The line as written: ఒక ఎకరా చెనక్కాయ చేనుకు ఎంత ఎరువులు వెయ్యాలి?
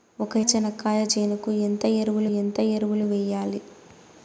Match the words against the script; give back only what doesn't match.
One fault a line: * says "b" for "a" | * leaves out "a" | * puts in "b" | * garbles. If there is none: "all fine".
* leaves out "ఎకరా"
* puts in "ఎంత ఎరువులు"